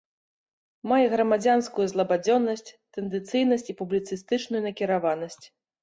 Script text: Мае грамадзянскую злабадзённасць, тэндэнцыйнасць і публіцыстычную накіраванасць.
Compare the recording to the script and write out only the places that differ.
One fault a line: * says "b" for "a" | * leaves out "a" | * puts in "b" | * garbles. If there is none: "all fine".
all fine